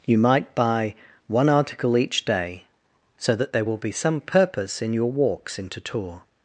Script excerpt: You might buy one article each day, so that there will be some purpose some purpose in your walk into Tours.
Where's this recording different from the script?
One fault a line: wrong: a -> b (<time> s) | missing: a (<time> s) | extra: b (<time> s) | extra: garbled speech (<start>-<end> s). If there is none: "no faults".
missing: some purpose (4.8 s)
wrong: walk -> walks (5.1 s)